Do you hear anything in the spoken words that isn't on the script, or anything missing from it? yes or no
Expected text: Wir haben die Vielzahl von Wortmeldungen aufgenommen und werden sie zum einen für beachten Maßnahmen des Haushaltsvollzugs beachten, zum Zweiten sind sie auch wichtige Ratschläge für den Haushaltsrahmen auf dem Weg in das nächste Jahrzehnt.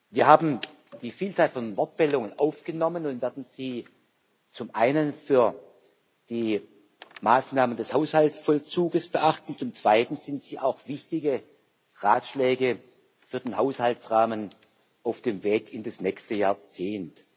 yes